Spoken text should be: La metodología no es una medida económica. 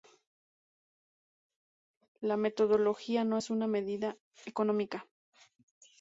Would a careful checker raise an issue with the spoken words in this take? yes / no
no